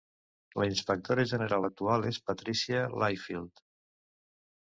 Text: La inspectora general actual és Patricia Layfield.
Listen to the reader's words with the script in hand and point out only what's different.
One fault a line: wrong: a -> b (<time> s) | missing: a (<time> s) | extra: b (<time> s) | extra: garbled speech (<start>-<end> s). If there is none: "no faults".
no faults